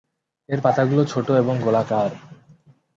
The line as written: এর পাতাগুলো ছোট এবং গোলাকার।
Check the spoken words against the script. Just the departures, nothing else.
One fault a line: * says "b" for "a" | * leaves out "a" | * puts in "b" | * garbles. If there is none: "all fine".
all fine